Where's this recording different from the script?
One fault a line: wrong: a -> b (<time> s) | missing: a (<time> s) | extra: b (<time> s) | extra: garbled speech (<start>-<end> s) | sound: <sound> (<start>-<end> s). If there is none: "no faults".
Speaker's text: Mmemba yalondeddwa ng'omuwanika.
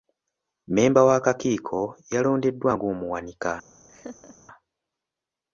extra: w'akakiiko (1.1 s)
sound: laugh (3.9-4.4 s)